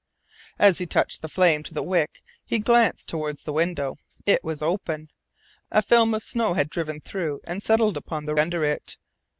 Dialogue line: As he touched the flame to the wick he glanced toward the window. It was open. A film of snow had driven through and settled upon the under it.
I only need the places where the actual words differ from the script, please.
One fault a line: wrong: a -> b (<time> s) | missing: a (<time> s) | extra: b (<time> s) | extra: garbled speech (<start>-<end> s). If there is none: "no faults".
no faults